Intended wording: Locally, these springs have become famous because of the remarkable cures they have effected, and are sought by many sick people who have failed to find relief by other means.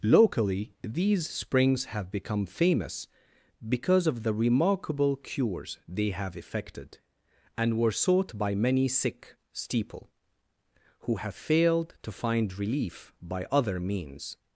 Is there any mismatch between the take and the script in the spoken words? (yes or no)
yes